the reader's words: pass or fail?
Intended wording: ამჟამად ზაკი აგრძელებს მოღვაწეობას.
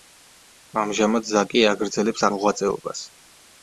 pass